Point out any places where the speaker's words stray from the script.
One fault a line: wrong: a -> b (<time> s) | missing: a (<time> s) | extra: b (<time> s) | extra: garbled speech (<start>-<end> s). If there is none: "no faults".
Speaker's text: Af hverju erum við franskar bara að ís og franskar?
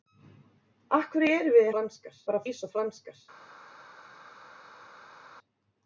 no faults